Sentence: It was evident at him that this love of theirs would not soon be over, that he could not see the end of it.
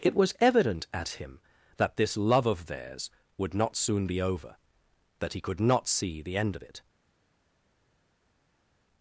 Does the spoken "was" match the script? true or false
true